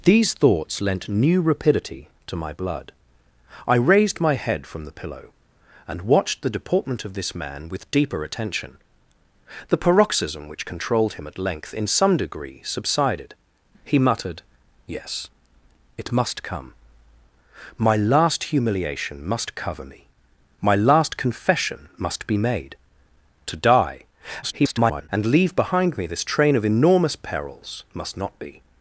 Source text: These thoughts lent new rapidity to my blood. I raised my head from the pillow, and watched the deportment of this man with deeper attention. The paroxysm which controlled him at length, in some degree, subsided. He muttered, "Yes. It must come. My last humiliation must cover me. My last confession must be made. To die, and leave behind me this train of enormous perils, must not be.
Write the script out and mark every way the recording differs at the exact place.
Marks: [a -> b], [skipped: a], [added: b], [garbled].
These thoughts lent new rapidity to my blood. I raised my head from the pillow, and watched the deportment of this man with deeper attention. The paroxysm which controlled him at length, in some degree, subsided. He muttered, "Yes. It must come. My last humiliation must cover me. My last confession must be made. To die, [garbled] and leave behind me this train of enormous perils, must not be.